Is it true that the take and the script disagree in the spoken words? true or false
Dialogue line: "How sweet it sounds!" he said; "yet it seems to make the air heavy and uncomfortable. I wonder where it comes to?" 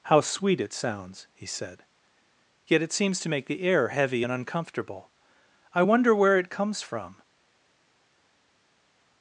true